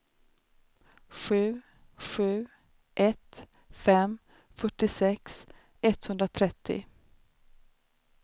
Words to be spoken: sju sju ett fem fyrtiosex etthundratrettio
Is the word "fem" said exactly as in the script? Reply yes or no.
yes